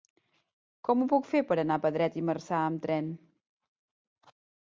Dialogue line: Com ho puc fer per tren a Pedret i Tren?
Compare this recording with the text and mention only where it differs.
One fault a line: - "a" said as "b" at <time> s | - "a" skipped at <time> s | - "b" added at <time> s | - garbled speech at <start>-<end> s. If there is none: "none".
- "tren" said as "anar" at 1.6 s
- "Marzà amb" added at 2.3 s